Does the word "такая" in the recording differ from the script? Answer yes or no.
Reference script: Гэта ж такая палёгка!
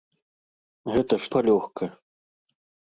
yes